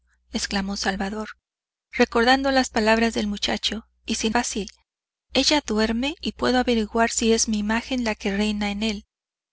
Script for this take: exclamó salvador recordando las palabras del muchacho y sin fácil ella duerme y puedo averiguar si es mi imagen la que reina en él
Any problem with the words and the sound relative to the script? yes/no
no